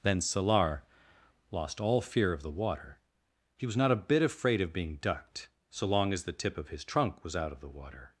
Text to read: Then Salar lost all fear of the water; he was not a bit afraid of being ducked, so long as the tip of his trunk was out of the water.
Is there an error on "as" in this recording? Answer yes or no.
no